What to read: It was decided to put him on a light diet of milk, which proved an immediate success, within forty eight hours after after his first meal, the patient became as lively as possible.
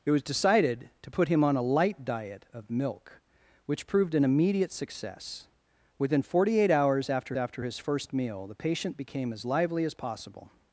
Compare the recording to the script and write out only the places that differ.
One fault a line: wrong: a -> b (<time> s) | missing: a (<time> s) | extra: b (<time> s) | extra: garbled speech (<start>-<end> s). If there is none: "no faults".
no faults